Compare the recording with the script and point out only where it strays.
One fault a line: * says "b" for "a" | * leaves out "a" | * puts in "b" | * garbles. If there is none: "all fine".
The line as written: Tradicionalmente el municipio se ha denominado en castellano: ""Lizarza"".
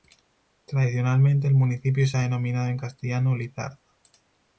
all fine